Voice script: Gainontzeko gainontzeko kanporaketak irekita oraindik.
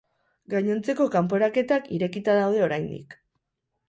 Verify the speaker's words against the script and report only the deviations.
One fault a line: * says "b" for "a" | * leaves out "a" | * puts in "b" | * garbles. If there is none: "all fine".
* leaves out "gainontzeko"
* puts in "daude"